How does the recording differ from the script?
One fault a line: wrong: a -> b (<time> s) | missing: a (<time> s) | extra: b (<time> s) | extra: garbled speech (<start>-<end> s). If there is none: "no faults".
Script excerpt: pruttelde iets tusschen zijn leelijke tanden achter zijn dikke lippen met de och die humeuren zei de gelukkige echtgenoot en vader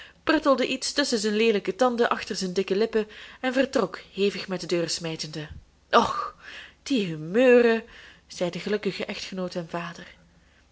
extra: en vertrok hevig (3.4 s)
extra: deur smijtende (4.6 s)